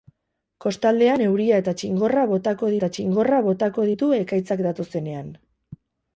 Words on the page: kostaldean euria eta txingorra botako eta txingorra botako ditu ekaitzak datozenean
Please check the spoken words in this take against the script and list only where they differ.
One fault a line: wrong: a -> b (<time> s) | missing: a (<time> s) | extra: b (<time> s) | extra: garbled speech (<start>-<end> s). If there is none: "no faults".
no faults